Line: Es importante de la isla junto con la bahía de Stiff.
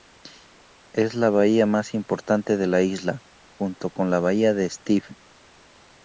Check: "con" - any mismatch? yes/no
no